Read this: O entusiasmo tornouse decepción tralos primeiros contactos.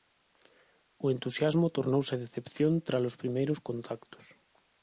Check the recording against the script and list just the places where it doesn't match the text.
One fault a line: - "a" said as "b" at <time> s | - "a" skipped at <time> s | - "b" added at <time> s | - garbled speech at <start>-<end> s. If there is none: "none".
none